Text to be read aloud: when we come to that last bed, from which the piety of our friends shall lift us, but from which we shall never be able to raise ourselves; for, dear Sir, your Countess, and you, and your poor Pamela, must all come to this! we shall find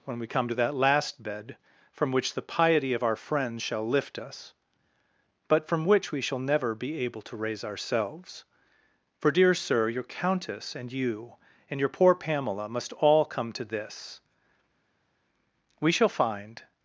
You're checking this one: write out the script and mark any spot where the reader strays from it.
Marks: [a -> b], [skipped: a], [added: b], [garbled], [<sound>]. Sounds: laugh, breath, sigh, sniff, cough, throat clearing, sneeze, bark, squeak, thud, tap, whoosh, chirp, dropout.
when we come to that last bed, from which the piety of our friends shall lift us, but from which we shall never be able to raise ourselves; for, dear Sir, your Countess, and you, and your poor Pamela, must all come to this! we shall find